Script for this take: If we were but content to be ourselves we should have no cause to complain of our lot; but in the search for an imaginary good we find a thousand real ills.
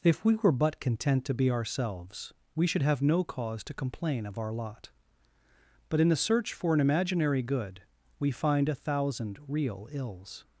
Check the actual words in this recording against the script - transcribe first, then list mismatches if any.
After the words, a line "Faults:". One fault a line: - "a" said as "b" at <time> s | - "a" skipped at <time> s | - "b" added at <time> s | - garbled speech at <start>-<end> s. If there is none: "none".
If we were but content to be ourselves we should have no cause to complain of our lot; but in the search for an imaginary good we find a thousand real ills.
Faults:
none